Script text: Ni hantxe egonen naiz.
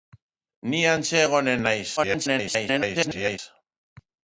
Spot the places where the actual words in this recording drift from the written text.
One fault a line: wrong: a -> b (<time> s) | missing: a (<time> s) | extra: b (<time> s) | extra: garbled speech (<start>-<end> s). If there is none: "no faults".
extra: garbled speech (2.0-3.4 s)